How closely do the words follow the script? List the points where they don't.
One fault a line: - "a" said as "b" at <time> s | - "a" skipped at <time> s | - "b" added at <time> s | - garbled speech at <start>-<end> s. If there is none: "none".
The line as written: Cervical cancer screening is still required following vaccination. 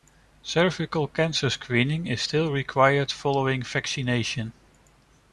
none